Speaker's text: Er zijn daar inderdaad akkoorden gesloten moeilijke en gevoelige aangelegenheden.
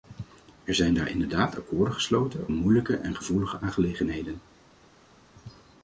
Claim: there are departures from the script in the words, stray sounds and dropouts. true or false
false